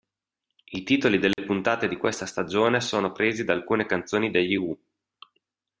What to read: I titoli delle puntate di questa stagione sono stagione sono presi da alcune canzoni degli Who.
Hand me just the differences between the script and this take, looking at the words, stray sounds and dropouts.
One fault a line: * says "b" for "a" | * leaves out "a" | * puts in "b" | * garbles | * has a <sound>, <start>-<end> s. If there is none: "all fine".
* has a dropout, 1.3-1.4 s
* leaves out "stagione sono"